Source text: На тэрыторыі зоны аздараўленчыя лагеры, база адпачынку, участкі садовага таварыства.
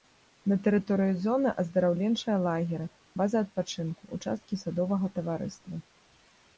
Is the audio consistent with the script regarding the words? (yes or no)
yes